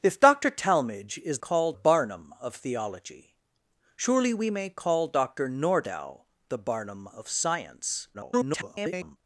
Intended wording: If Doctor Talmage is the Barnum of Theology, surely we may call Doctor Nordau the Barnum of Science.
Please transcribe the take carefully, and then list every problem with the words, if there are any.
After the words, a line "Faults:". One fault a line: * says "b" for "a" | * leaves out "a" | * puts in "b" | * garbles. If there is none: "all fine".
If Doctor Talmage is call Barnum of Theology, surely we may call Doctor Nordau the Barnum of Science. [garbled]
Faults:
* says "call" for "the"
* garbles